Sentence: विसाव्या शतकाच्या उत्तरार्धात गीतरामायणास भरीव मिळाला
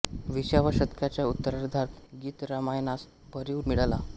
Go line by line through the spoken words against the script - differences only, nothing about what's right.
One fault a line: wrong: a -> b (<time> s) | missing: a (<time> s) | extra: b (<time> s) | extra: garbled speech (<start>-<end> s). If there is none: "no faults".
no faults